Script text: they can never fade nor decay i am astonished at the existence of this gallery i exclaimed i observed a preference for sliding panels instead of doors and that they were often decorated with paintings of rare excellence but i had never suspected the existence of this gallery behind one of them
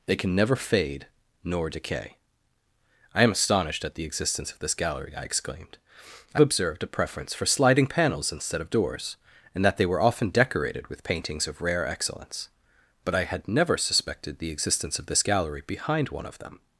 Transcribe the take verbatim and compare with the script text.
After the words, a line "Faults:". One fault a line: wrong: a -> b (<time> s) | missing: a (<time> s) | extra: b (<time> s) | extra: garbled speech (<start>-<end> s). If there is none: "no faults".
they can never fade nor decay i am astonished at the existence of this gallery i exclaimed i observed a preference for sliding panels instead of doors and that they were often decorated with paintings of rare excellence but i had never suspected the existence of this gallery behind one of them
Faults:
no faults